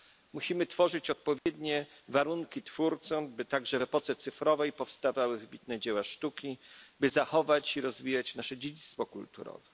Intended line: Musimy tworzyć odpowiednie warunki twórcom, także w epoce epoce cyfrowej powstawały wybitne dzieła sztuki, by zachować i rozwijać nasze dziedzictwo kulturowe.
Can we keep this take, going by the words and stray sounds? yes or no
no